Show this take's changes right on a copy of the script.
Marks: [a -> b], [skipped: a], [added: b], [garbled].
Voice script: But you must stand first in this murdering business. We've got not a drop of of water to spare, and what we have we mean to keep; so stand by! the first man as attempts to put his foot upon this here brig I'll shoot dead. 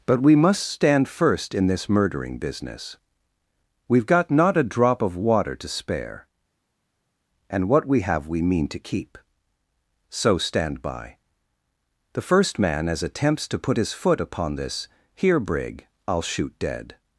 But [you -> we] must stand first in this murdering business. We've got not a drop of [skipped: of] water to spare, and what we have we mean to keep; so stand by! the first man as attempts to put his foot upon this here brig I'll shoot dead.